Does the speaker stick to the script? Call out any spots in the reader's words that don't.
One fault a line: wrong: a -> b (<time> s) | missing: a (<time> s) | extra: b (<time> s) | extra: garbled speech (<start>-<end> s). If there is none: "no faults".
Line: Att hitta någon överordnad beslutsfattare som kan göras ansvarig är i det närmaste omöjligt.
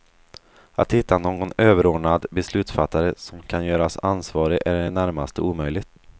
no faults